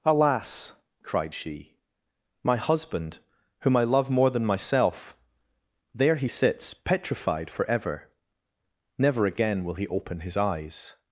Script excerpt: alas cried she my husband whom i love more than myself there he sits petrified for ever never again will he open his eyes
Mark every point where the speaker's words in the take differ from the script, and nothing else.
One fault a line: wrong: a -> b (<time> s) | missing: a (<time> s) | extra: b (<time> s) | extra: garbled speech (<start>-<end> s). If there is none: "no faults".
no faults